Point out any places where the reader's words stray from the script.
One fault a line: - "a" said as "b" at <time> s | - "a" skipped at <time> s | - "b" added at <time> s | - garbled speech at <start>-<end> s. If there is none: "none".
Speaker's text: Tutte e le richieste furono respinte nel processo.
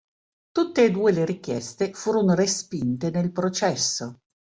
- "due" added at 0.9 s